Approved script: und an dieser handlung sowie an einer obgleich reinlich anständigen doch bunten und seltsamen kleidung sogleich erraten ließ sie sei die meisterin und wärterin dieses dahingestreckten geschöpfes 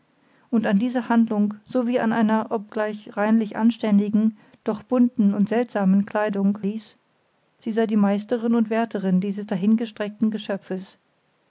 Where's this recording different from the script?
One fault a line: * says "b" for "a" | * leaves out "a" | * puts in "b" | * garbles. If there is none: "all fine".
* leaves out "sogleich erraten"